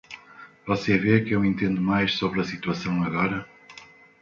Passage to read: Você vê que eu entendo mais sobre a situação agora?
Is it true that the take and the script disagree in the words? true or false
false